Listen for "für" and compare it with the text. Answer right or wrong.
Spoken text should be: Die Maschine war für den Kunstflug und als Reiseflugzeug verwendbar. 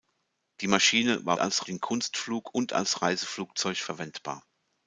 wrong